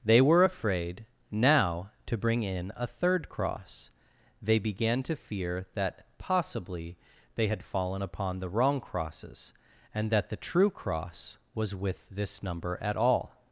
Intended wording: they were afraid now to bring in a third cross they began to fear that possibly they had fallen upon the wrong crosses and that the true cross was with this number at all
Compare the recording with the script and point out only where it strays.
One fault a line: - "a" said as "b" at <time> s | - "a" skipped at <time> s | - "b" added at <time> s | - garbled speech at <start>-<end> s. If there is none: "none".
none